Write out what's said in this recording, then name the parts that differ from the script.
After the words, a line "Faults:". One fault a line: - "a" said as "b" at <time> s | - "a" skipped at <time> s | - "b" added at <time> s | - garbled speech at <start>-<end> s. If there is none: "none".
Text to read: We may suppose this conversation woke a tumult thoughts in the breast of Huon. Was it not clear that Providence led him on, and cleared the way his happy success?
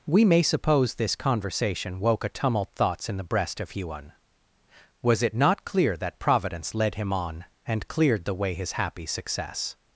We may suppose this conversation woke a tumult thoughts in the breast of Huon. Was it not clear that Providence led him on, and cleared the way his happy success?
Faults:
none